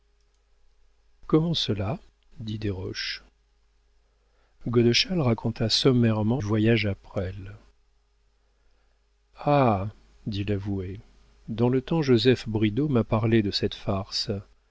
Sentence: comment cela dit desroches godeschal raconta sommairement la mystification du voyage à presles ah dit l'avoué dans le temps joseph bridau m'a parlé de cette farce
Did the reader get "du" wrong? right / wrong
wrong